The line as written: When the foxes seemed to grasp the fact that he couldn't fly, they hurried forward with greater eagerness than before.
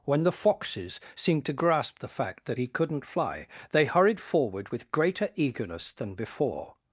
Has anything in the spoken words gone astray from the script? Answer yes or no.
no